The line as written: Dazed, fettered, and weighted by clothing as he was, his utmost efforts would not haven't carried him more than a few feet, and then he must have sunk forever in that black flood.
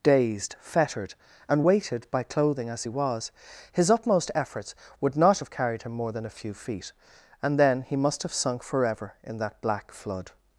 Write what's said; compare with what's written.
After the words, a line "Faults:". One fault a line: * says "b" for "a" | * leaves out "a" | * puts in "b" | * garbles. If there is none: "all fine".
Dazed, fettered, and weighted by clothing as he was, his utmost efforts would not have carried him more than a few feet, and then he must have sunk forever in that black flood.
Faults:
* says "have" for "haven't"